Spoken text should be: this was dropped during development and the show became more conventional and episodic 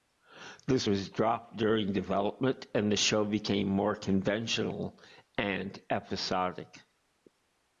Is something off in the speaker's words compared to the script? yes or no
no